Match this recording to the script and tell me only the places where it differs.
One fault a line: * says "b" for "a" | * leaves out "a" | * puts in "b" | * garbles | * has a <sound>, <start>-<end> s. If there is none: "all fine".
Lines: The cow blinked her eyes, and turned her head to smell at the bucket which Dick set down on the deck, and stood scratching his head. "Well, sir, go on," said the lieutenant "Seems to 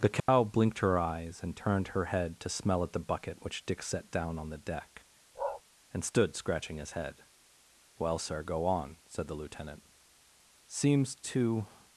* has a dropout, 0.2-0.3 s
* has a bark, 5.3-5.6 s